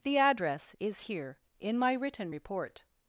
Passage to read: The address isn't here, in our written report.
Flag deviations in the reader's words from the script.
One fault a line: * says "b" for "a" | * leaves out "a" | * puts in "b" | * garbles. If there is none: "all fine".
* says "is" for "isn't"
* says "my" for "our"